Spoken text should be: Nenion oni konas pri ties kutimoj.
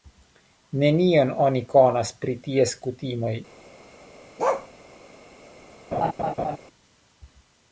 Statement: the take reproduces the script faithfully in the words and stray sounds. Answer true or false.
false